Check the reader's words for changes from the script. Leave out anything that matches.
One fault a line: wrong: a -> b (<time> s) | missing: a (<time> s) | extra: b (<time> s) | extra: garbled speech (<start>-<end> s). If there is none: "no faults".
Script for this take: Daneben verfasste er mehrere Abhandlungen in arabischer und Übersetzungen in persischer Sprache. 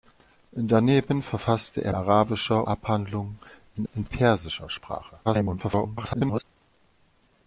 wrong: mehrere -> arabischer (1.9 s)
missing: arabischer und Übersetzungen (3.9 s)
extra: garbled speech (5.2-6.4 s)